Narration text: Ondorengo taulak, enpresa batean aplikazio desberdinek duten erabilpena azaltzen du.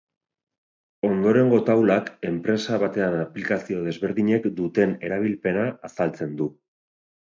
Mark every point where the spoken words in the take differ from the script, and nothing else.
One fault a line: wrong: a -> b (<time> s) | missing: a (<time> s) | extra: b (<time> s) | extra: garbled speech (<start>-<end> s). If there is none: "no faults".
no faults